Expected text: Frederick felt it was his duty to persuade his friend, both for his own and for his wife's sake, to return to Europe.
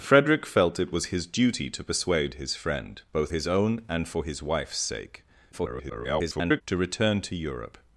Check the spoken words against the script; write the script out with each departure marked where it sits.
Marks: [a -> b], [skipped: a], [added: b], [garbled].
Frederick felt it was his duty to persuade his friend, both [skipped: for] his own and for his wife's sake, [garbled] to return to Europe.